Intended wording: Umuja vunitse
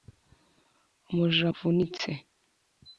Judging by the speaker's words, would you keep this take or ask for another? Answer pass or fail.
pass